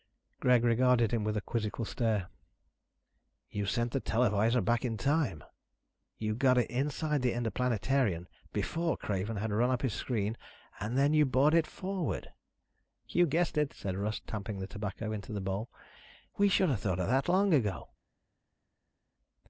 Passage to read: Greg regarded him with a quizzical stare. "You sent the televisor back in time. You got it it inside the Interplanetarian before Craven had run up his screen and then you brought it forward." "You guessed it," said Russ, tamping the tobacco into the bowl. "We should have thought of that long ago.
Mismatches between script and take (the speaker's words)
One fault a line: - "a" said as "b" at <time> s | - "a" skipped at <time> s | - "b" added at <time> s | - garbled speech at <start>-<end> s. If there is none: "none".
- "it" skipped at 6.7 s